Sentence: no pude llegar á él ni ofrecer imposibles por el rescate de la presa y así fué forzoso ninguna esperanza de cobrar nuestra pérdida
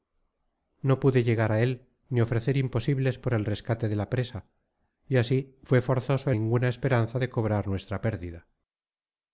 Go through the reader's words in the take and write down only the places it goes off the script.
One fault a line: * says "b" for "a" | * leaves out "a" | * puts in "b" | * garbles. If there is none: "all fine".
all fine